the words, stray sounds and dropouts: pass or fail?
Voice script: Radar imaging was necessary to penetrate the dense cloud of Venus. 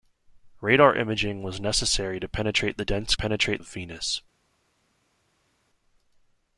fail